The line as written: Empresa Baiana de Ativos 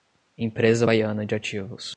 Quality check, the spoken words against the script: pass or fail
pass